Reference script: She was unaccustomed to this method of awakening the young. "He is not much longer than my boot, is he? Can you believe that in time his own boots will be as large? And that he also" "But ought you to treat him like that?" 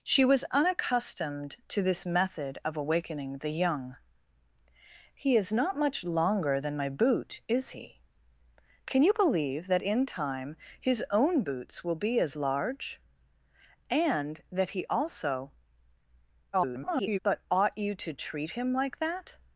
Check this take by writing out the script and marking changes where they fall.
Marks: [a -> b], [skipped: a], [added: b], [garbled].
She was unaccustomed to this method of awakening the young. "He is not much longer than my boot, is he? Can you believe that in time his own boots will be as large? And that he also" [garbled] "But ought you to treat him like that?"